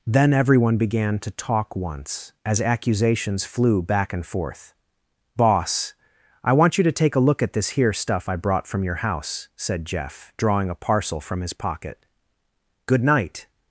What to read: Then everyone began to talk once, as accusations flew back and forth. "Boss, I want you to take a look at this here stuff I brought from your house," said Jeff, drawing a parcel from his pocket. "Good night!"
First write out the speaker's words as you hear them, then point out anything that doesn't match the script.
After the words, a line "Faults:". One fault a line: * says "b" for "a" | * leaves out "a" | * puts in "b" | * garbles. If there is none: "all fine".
Then everyone began to talk once, as accusations flew back and forth. "Boss, I want you to take a look at this here stuff I brought from your house," said Jeff, drawing a parcel from his pocket. "Good night!"
Faults:
all fine